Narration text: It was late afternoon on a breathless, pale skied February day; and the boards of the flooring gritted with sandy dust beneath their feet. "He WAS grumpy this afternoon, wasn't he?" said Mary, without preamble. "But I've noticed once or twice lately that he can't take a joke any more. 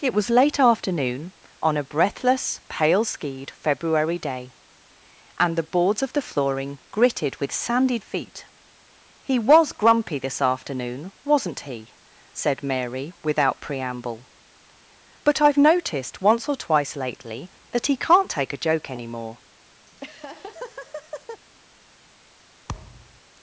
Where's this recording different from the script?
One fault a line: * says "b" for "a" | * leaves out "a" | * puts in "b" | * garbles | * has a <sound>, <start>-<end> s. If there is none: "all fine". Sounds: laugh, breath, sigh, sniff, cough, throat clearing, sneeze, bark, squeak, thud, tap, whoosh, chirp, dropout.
* leaves out "dust beneath their"
* has a laugh, 19.9-21.4 s
* has a thud, 22.7-23.2 s